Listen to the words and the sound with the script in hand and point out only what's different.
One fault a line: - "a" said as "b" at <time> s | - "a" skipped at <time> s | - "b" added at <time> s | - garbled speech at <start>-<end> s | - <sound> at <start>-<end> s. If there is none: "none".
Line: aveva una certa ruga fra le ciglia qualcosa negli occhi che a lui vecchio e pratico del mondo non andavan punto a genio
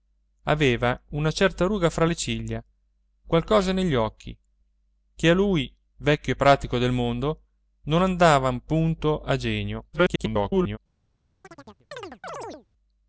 - garbled speech at 9.9-10.8 s
- chirp at 11.4-12.7 s